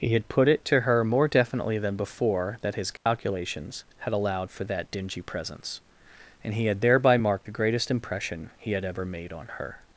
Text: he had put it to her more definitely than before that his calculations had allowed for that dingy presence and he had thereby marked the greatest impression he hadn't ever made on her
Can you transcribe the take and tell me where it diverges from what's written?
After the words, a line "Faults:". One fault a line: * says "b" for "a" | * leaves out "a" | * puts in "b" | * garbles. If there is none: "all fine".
he had put it to her more definitely than before that his calculations had allowed for that dingy presence and he had thereby marked the greatest impression he had ever made on her
Faults:
* says "had" for "hadn't"